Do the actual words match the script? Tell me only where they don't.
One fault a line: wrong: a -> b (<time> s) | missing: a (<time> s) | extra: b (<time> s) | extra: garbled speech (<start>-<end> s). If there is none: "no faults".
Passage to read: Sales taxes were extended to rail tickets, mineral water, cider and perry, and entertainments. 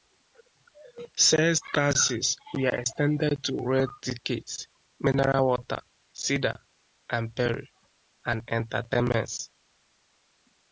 no faults